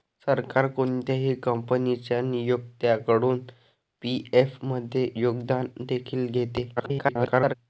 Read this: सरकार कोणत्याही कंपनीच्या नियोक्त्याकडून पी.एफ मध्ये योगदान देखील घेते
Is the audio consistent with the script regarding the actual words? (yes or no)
no